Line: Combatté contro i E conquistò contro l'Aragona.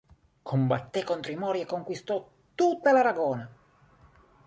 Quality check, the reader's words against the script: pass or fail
fail